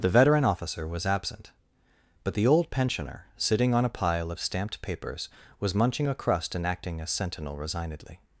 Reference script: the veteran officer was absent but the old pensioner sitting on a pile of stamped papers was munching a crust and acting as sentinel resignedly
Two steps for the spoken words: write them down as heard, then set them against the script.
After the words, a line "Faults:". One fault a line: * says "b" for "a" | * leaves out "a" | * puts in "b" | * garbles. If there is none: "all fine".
the veteran officer was absent but the old pensioner sitting on a pile of stamped papers was munching a crust and acting as sentinel resignedly
Faults:
all fine